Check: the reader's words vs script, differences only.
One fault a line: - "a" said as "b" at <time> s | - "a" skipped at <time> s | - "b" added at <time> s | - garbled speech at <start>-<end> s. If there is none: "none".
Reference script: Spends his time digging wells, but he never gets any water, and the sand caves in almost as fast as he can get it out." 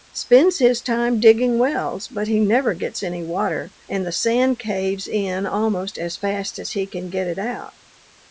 none